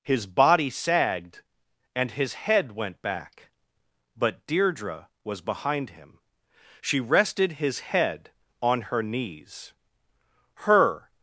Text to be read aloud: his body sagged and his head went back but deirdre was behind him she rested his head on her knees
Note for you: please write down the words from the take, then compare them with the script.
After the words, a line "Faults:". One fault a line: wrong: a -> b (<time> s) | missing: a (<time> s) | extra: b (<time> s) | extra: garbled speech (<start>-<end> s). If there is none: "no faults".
his body sagged and his head went back but deirdre was behind him she rested his head on her knees her
Faults:
extra: her (10.5 s)